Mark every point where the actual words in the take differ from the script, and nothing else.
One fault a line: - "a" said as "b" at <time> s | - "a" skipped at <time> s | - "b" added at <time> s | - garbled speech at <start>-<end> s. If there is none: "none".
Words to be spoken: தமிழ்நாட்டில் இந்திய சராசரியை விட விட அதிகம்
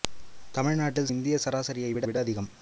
none